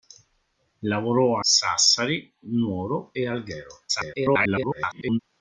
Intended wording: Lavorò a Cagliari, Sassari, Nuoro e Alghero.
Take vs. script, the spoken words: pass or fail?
fail